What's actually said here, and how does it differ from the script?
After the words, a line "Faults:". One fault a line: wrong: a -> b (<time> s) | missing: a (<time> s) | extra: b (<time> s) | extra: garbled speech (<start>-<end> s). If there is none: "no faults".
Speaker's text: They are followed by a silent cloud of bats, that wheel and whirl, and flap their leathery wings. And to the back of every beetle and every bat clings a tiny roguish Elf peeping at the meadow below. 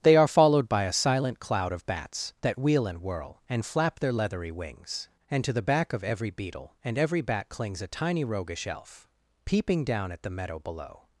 They are followed by a silent cloud of bats, that wheel and whirl, and flap their leathery wings. And to the back of every beetle and every bat clings a tiny roguish Elf peeping down at the meadow below.
Faults:
extra: down (9.8 s)